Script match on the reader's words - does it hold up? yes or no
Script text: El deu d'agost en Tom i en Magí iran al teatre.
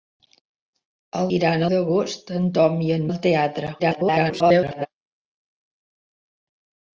no